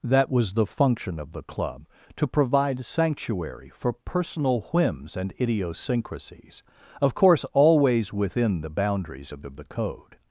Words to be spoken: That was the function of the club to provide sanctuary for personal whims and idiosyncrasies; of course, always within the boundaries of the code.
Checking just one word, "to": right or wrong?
right